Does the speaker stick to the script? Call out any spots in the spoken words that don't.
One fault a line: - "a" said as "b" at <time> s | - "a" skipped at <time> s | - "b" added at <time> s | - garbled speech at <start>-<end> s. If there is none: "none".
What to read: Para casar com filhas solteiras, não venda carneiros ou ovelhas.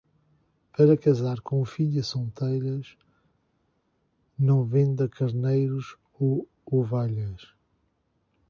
none